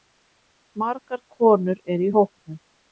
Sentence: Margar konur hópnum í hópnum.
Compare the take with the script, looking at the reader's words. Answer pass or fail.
fail